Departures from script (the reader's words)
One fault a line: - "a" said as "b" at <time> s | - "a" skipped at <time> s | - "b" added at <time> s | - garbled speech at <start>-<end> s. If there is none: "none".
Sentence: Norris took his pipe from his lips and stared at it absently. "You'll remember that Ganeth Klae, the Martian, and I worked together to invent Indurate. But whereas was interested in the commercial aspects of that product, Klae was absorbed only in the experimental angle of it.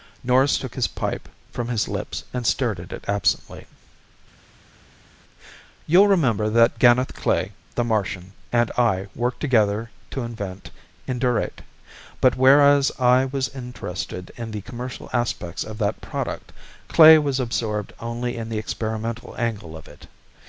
- "I" added at 13.0 s